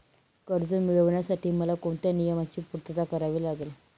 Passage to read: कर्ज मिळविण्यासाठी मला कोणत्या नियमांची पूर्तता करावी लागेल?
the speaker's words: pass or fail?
pass